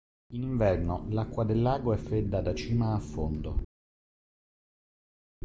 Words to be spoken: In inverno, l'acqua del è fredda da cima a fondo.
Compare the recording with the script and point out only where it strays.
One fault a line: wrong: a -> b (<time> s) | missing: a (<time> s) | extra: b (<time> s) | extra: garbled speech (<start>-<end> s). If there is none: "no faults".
extra: lago (1.6 s)